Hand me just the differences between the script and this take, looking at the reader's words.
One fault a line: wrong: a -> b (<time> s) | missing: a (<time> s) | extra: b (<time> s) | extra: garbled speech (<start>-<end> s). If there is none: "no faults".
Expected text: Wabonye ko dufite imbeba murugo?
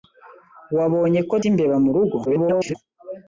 missing: dufite (1.4 s)
extra: garbled speech (2.2-2.8 s)